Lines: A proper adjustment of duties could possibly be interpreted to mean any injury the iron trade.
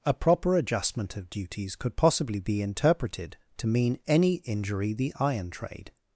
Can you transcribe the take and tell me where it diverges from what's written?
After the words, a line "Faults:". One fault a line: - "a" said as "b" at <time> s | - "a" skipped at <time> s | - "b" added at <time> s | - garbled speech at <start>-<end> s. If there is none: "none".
A proper adjustment of duties could possibly be interpreted to mean any injury the iron trade.
Faults:
none